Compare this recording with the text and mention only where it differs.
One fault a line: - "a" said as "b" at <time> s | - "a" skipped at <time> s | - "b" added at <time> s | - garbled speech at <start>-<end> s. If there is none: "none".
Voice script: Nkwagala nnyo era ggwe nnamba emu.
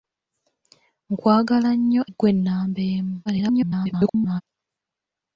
- "era" skipped at 2.0 s
- garbled speech at 3.3-4.4 s